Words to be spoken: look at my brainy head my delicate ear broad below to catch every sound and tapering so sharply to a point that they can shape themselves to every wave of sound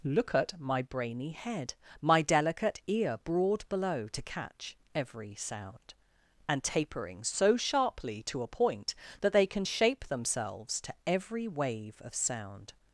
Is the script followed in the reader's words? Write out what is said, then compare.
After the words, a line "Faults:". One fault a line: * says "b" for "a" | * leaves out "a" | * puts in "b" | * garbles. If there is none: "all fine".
look at my brainy head my delicate ear broad below to catch every sound and tapering so sharply to a point that they can shape themselves to every wave of sound
Faults:
all fine